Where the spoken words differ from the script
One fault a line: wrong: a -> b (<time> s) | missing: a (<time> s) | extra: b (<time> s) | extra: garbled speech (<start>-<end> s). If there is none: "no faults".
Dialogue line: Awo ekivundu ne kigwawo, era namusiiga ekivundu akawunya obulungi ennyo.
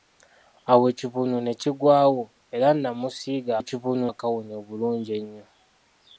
no faults